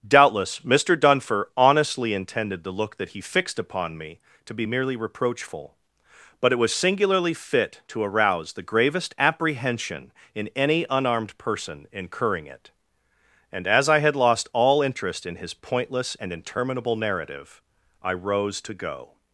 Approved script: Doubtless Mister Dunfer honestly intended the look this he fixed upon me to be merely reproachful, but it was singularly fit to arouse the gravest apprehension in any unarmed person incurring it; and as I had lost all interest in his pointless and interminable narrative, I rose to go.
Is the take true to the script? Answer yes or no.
no